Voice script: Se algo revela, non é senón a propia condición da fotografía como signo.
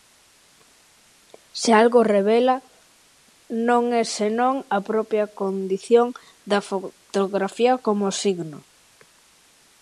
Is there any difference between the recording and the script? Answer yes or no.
no